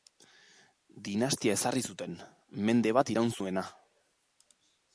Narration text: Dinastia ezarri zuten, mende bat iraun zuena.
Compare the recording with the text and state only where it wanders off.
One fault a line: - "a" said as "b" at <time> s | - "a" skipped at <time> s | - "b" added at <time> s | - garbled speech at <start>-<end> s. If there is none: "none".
none